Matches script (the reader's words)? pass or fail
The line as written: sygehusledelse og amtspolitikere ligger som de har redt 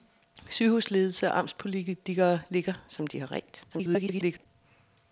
fail